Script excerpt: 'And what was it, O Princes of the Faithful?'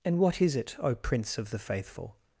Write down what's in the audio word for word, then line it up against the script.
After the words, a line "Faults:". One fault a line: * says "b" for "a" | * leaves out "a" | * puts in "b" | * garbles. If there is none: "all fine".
'And what is it, O Prince of the Faithful?'
Faults:
* says "is" for "was"
* says "Prince" for "Princes"